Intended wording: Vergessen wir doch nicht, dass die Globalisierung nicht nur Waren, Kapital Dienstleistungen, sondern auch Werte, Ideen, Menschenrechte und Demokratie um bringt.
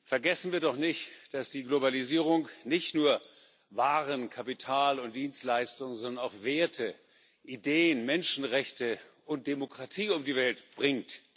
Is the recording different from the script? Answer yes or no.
yes